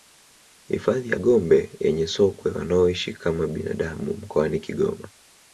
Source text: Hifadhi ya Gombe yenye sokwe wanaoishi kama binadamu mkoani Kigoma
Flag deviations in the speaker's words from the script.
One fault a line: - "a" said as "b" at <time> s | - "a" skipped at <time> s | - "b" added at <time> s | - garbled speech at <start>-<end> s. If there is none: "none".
none